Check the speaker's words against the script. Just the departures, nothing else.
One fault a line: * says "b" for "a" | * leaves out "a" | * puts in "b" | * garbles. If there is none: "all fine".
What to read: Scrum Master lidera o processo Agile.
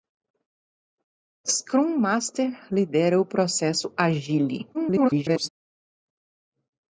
* garbles